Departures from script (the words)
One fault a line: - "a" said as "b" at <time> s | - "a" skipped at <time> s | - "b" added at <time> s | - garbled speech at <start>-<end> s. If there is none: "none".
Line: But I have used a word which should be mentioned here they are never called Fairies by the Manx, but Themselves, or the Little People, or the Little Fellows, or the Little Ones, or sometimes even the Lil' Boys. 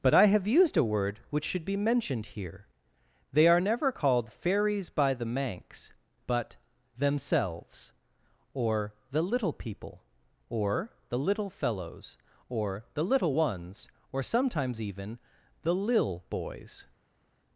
none